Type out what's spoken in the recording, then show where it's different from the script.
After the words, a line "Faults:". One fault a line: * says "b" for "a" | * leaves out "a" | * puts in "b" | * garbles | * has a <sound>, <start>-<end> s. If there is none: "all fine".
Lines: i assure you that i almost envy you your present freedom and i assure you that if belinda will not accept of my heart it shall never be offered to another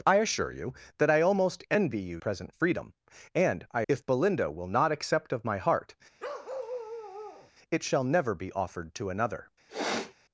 i assure you that i almost envy you present freedom and i if belinda will not accept of my heart it shall never be offered to another
Faults:
* leaves out "your"
* leaves out "assure you that"
* has a bark, 6.2-7.5 s
* has a sniff, 9.7-10.1 s